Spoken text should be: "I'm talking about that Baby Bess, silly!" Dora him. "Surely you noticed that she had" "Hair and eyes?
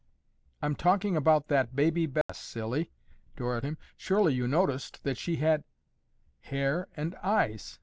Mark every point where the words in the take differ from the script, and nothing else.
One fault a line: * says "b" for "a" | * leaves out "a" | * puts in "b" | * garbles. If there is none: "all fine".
all fine